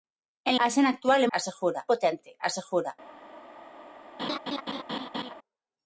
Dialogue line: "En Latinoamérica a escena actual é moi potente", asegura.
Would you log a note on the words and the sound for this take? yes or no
yes